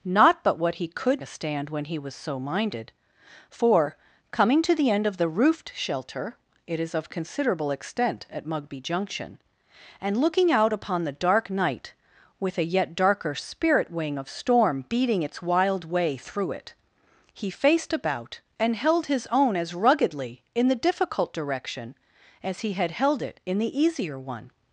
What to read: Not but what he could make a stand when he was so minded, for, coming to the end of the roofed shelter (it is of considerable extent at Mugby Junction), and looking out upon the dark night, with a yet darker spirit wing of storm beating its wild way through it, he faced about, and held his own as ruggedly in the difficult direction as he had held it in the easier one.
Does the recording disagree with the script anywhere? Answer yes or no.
yes